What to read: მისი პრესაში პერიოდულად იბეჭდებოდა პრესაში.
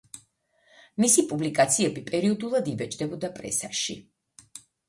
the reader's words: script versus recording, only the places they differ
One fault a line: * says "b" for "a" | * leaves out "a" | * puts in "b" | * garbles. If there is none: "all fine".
* says "პუბლიკაციები" for "პრესაში"